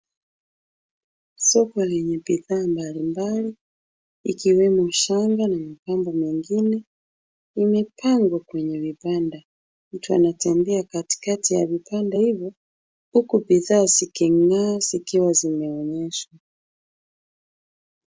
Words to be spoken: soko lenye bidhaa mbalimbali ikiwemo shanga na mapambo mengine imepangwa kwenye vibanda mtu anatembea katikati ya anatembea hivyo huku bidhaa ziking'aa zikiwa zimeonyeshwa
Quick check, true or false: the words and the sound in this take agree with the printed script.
false